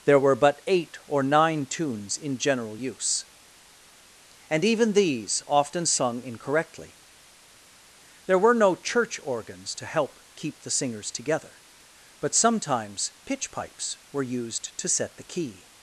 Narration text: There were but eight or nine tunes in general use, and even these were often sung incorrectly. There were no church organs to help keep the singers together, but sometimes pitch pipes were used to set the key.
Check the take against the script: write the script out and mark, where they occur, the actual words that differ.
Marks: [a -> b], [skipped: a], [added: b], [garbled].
There were but eight or nine tunes in general use, and even these [skipped: were] often sung incorrectly. There were no church organs to help keep the singers together, but sometimes pitch pipes were used to set the key.